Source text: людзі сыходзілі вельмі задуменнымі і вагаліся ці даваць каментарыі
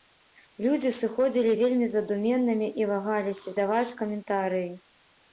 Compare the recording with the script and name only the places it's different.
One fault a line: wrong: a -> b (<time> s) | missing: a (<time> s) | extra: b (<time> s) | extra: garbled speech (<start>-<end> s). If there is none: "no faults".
missing: ці (3.5 s)